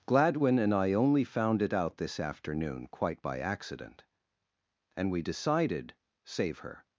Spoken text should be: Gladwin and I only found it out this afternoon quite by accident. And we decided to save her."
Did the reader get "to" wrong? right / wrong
wrong